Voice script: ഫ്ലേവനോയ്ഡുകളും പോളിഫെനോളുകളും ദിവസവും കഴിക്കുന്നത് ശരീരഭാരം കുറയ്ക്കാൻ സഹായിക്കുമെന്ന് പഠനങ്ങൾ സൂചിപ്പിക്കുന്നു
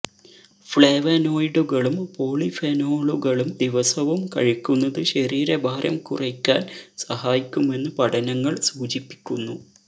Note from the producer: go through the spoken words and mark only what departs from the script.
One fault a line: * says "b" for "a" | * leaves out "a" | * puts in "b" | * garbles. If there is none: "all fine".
all fine